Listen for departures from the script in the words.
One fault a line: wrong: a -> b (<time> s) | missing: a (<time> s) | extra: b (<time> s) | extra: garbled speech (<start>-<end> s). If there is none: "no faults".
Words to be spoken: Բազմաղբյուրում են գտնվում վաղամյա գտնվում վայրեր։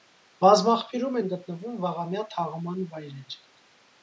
wrong: գտնվում -> թաղման (2.4 s)